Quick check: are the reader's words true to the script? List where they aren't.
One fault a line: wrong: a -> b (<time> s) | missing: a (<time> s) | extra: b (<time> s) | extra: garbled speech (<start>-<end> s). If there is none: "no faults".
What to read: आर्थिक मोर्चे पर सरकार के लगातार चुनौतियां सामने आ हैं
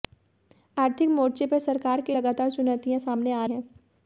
no faults